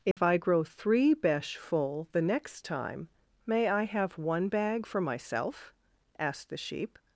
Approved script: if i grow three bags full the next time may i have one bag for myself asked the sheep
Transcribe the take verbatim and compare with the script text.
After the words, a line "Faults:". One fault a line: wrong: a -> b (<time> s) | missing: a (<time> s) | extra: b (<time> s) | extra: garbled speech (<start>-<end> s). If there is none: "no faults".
if i grow three besh full the next time may i have one bag for myself asked the sheep
Faults:
wrong: bags -> besh (1.1 s)